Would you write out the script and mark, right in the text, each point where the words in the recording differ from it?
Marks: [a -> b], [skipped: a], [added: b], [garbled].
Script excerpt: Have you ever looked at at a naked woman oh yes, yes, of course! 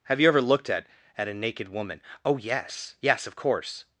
Have you ever looked at at a naked woman oh yes, yes, of course!